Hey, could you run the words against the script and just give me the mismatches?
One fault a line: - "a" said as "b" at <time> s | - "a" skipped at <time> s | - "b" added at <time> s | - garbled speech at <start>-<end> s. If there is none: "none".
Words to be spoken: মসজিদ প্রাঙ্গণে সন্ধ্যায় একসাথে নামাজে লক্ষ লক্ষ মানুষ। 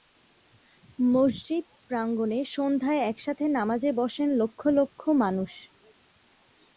- "বসেন" added at 4.0 s